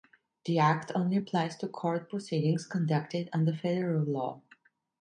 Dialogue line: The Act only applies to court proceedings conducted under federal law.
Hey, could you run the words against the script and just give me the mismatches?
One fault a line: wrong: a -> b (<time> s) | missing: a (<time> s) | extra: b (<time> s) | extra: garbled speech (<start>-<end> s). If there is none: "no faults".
no faults